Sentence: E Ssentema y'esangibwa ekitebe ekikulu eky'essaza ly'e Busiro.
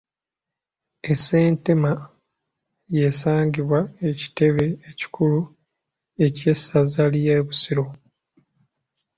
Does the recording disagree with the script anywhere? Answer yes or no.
no